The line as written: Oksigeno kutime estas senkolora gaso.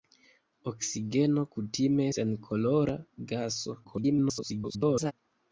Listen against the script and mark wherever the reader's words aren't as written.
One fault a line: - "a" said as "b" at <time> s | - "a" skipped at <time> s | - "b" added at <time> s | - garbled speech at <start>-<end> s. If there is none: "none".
- "estas" skipped at 2.1 s
- garbled speech at 3.8-5.1 s